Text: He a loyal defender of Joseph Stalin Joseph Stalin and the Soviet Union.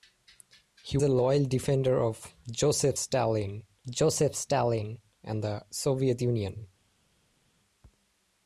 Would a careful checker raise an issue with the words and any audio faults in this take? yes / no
no